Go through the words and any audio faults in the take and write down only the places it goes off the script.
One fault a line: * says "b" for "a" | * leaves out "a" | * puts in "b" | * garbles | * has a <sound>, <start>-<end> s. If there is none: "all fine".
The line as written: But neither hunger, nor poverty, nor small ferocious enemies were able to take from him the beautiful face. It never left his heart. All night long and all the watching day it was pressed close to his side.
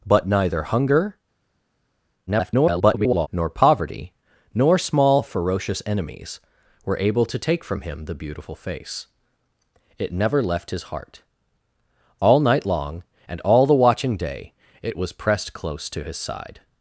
* garbles